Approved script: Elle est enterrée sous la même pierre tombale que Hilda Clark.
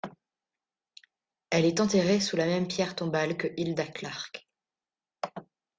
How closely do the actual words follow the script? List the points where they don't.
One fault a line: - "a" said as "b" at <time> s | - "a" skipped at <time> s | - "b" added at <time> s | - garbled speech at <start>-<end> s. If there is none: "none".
none